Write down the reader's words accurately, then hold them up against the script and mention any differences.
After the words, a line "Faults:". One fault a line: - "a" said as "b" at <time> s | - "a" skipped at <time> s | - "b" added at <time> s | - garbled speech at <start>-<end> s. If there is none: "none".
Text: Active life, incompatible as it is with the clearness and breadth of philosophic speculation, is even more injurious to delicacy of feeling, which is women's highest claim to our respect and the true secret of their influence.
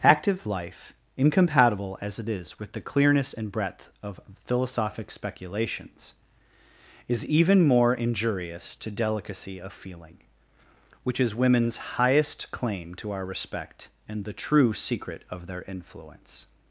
Active life, incompatible as it is with the clearness and breadth of philosophic speculations, is even more injurious to delicacy of feeling, which is women's highest claim to our respect and the true secret of their influence.
Faults:
- "speculation" said as "speculations" at 5.1 s